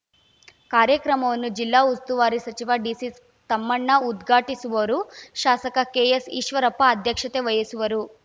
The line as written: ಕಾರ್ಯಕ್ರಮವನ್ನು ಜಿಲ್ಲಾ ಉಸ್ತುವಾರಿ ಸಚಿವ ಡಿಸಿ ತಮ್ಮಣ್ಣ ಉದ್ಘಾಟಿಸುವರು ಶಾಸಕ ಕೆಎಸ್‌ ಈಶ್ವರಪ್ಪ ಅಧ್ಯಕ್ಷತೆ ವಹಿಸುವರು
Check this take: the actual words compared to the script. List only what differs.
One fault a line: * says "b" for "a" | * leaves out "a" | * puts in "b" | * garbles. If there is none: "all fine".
all fine